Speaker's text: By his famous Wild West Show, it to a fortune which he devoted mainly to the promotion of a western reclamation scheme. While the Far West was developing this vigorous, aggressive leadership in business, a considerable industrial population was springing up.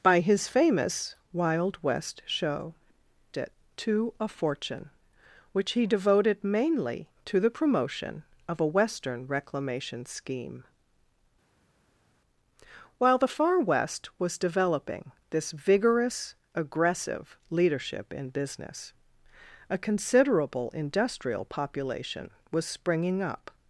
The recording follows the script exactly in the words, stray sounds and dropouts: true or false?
true